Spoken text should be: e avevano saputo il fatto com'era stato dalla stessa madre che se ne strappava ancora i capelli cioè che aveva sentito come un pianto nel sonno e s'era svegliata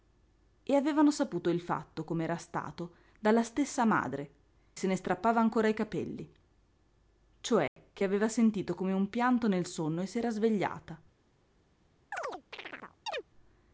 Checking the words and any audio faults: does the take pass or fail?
fail